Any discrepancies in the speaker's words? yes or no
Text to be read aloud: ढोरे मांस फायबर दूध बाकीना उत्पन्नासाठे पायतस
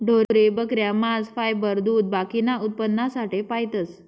yes